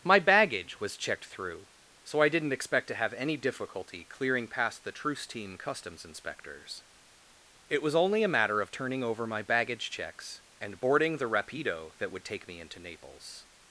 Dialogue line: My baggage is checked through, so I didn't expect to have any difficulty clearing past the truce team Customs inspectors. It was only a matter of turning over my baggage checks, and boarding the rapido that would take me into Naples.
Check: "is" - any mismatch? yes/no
yes